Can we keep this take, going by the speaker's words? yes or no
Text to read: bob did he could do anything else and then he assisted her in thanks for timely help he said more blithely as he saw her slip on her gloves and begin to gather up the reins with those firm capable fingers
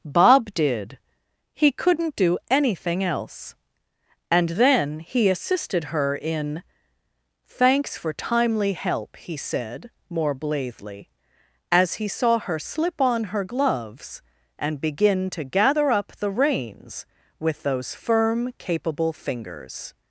no